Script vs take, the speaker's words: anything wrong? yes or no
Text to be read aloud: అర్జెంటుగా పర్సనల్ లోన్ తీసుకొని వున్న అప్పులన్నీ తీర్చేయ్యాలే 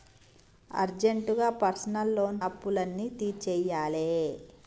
yes